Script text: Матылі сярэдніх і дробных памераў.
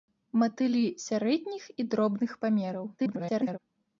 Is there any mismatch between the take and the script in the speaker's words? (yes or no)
yes